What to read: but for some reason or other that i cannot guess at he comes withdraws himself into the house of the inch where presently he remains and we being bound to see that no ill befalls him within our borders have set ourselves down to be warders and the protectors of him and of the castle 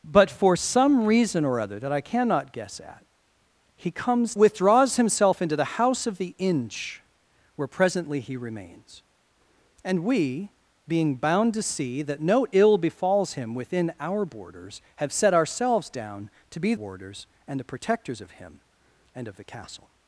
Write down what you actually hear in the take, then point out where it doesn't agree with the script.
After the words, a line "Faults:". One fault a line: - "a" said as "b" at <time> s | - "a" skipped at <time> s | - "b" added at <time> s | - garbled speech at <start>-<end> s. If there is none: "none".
but for some reason or other that i cannot guess at he comes withdraws himself into the house of the inch where presently he remains and we being bound to see that no ill befalls him within our borders have set ourselves down to be warders and the protectors of him and of the castle
Faults:
none